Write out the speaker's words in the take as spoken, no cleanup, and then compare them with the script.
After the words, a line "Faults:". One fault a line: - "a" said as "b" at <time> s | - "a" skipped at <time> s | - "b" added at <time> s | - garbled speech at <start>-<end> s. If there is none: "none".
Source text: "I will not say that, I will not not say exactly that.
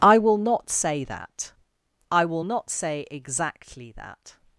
"I will not say that, I will not say exactly that.
Faults:
- "not" skipped at 2.7 s